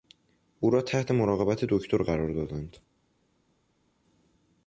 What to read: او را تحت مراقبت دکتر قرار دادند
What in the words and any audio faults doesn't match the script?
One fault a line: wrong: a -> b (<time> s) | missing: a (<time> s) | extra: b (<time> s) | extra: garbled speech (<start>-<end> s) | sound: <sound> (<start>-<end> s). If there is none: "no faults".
no faults